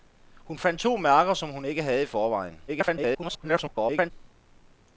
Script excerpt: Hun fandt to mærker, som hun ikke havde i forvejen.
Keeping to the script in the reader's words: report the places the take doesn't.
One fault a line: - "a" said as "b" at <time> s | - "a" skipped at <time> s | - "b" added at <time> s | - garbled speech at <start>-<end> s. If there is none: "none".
- garbled speech at 2.7-4.1 s